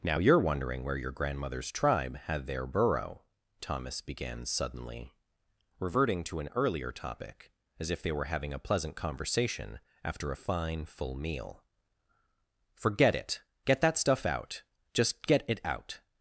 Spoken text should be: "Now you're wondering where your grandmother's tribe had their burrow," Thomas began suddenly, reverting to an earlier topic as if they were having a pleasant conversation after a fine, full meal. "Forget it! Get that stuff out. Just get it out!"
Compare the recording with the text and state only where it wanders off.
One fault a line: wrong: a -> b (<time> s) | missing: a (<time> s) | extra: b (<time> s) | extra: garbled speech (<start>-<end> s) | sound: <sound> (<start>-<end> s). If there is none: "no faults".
no faults